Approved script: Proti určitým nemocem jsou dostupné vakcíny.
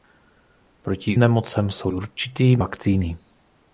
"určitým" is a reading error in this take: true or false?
true